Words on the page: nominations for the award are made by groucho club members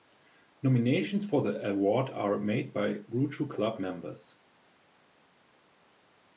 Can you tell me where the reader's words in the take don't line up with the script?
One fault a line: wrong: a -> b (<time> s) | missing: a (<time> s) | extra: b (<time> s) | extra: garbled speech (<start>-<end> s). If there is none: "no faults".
no faults